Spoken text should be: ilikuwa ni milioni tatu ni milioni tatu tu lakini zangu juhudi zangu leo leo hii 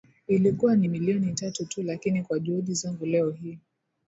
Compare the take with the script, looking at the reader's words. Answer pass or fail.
fail